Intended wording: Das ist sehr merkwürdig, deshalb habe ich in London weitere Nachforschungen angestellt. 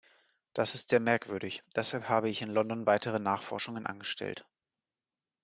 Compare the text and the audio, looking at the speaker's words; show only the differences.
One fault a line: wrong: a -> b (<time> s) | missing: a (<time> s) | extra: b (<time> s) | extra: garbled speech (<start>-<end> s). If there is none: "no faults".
no faults